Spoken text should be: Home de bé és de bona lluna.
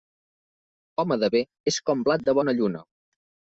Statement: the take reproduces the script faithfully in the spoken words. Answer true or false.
false